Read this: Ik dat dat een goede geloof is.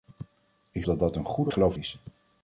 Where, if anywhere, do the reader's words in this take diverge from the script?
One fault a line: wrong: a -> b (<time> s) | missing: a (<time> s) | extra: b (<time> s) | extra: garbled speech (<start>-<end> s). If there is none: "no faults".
no faults